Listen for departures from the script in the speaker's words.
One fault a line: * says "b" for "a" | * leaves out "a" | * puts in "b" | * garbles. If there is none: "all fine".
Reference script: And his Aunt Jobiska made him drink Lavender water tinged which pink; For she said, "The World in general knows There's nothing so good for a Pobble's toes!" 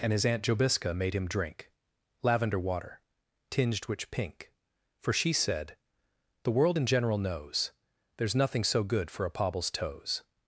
all fine